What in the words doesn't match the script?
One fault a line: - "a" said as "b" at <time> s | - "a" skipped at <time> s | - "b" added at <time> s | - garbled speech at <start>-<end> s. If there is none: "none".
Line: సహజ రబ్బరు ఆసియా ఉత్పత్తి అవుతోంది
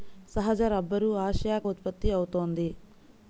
none